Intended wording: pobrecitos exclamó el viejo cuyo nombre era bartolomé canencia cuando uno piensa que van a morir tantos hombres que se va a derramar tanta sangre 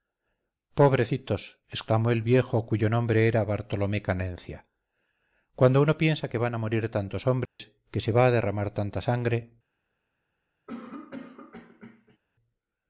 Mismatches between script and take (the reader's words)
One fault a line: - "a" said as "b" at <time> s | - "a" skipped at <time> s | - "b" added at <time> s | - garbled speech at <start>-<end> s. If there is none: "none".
none